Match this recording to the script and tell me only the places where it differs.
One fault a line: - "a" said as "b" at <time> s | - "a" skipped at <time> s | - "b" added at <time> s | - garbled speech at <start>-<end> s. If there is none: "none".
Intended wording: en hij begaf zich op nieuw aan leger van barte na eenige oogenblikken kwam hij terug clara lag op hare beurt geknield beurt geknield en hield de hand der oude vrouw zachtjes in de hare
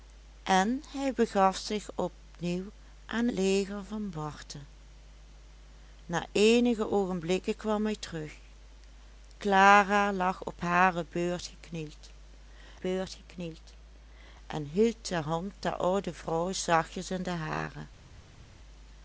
none